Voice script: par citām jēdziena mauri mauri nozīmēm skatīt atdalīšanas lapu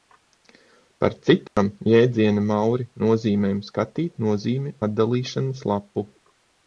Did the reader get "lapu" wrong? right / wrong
right